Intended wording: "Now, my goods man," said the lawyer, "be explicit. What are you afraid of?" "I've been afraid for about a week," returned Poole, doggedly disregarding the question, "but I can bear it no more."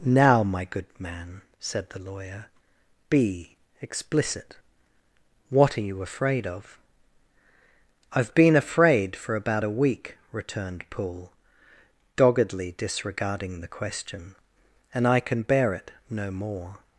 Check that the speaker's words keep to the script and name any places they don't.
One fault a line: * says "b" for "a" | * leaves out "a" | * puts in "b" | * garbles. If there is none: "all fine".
* says "good" for "goods"
* says "and" for "but"